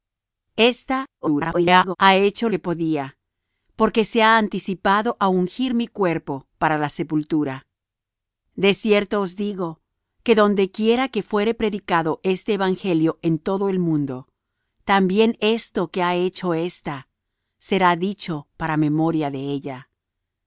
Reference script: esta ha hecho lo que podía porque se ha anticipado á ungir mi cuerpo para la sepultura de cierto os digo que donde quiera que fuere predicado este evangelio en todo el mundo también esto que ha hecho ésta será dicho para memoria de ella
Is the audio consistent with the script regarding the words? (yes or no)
no